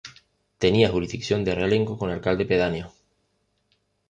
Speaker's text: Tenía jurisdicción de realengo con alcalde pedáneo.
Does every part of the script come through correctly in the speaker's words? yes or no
yes